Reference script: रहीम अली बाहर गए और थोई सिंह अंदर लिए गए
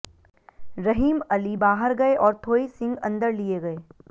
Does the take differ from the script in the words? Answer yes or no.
no